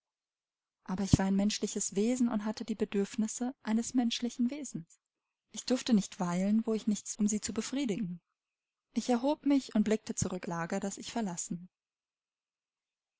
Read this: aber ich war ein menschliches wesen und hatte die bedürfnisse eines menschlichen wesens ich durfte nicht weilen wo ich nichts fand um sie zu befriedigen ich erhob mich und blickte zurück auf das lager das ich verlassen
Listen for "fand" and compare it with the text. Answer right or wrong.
wrong